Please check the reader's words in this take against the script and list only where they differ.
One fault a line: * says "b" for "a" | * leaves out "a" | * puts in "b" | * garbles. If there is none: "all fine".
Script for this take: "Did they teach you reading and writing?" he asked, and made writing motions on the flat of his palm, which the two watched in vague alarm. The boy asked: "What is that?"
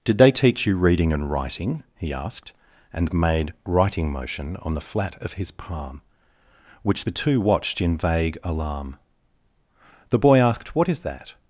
* says "motion" for "motions"